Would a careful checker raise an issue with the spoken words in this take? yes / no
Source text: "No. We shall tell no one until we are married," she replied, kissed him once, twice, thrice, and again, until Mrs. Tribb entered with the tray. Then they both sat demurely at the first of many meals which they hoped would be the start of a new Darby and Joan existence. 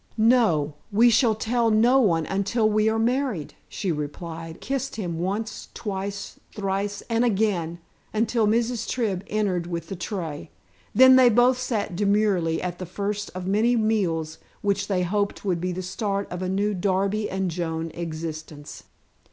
no